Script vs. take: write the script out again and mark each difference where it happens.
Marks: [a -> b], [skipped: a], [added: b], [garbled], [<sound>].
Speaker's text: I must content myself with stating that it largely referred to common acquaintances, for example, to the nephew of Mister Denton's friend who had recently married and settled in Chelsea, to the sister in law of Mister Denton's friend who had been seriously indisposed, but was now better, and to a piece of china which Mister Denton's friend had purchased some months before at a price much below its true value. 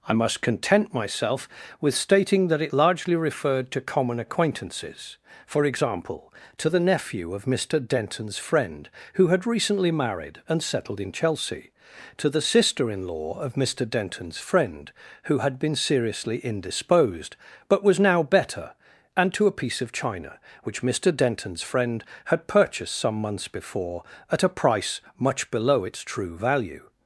I must content myself with stating that it largely referred to common acquaintances, for example, to the nephew of Mister Denton's friend who had recently married and settled in Chelsea, to the sister in law of Mister Denton's friend who had been seriously indisposed, but was now better, and to a piece of china which Mister Denton's friend had purchased some months before at a price much below its true value.